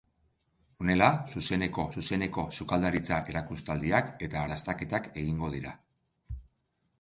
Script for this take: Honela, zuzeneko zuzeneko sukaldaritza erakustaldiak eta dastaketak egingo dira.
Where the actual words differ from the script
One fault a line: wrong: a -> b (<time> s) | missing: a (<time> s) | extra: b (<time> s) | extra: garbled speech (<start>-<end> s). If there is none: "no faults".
no faults